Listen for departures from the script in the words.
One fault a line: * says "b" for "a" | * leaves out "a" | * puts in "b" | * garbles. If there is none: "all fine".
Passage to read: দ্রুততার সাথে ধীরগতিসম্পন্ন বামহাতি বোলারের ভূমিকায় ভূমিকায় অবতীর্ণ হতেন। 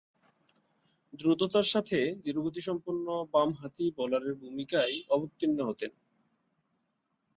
* leaves out "ভূমিকায়"